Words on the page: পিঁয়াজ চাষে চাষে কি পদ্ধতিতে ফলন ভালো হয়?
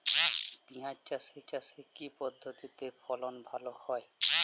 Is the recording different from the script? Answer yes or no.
no